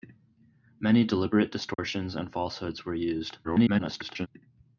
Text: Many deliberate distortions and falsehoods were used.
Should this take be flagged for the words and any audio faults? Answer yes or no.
yes